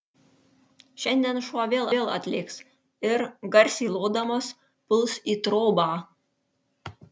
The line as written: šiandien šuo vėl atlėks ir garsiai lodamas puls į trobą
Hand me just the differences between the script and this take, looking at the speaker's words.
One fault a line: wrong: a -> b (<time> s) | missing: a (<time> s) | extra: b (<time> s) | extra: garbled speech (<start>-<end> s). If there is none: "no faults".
extra: vėl (1.9 s)